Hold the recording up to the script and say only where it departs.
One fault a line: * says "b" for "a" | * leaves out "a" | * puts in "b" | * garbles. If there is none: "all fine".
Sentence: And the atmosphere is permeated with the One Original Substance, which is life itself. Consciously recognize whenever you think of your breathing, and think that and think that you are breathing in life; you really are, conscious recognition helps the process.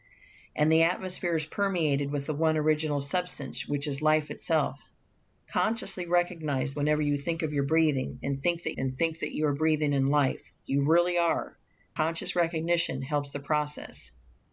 all fine